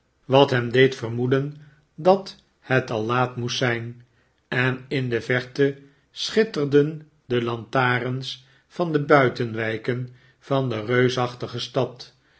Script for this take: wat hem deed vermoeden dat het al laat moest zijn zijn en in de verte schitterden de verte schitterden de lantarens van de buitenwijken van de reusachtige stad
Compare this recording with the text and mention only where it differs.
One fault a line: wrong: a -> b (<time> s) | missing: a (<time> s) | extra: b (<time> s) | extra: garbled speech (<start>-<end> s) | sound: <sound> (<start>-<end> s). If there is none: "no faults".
missing: zijn (4.0 s)
missing: verte schitterden de (7.4 s)